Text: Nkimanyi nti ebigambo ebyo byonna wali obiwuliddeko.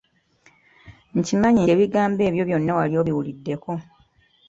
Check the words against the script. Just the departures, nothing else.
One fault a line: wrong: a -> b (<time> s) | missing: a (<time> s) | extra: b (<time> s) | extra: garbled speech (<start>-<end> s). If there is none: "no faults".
missing: nti (1.6 s)